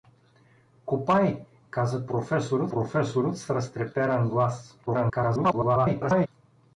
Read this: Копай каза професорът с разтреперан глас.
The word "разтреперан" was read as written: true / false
true